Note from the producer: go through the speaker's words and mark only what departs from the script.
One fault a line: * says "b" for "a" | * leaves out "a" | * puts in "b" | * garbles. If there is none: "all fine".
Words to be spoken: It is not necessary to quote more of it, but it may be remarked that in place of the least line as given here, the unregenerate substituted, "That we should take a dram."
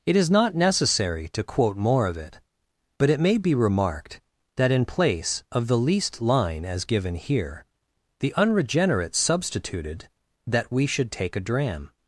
all fine